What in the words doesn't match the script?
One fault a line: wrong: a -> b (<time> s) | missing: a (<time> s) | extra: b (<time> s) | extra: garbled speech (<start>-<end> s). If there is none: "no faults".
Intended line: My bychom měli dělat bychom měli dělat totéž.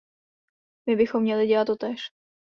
missing: bychom měli dělat (1.7 s)